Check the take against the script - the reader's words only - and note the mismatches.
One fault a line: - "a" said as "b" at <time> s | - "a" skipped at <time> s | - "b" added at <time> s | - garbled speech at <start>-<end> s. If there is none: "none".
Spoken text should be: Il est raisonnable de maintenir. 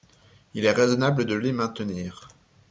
- "les" added at 1.4 s